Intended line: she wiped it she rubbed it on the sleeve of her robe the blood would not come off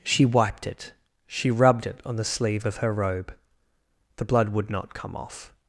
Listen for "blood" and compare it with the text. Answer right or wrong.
right